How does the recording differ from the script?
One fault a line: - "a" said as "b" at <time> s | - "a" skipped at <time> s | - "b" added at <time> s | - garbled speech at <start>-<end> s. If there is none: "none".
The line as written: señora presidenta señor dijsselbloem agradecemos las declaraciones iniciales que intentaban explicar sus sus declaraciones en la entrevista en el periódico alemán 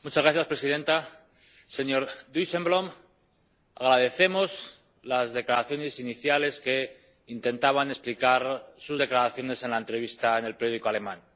- "sus" skipped at 9.0 s